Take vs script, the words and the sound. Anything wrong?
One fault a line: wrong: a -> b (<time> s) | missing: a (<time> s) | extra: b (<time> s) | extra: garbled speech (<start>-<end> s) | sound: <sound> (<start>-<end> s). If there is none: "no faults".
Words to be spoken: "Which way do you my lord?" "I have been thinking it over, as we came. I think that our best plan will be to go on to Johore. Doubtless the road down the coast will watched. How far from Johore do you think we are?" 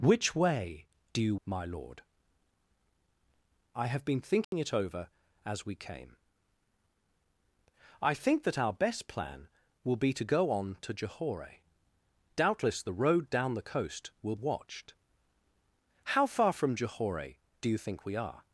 sound: dropout (4.4-4.5 s)